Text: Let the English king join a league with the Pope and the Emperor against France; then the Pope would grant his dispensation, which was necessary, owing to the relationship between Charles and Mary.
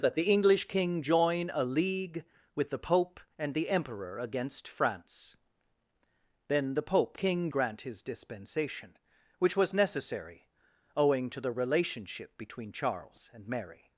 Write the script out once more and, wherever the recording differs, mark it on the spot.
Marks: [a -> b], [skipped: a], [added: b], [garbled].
Let the English king join a league with the Pope and the Emperor against France; then the Pope [would -> king] grant his dispensation, which was necessary, owing to the relationship between Charles and Mary.